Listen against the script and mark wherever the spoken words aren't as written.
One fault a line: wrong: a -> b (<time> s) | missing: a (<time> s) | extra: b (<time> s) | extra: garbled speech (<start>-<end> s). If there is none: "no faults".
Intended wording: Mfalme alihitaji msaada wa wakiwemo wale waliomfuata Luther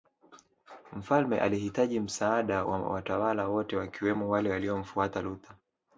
extra: watawala wote (2.9 s)